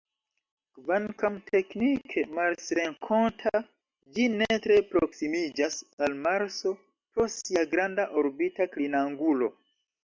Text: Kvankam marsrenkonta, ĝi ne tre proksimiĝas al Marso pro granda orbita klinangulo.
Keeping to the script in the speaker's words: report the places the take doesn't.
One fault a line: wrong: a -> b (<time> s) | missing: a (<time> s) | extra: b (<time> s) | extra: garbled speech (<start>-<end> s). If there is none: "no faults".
extra: teknike (1.5 s)
extra: sia (7.4 s)